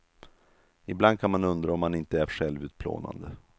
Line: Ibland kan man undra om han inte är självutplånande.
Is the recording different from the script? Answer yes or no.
no